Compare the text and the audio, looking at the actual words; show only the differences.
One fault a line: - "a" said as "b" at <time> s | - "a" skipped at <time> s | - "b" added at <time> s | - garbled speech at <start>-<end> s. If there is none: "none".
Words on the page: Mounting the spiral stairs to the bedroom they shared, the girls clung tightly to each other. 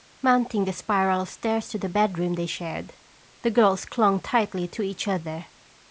none